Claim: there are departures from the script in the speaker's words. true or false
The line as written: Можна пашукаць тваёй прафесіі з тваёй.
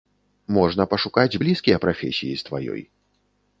true